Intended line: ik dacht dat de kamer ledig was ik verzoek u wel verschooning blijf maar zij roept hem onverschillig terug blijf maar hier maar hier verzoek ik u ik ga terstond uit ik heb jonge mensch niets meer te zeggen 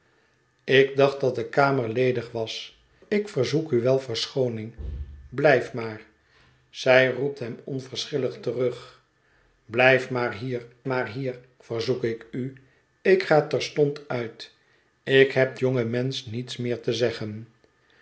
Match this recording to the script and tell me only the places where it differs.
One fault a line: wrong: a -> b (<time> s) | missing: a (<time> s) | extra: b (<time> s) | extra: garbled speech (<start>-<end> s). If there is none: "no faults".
no faults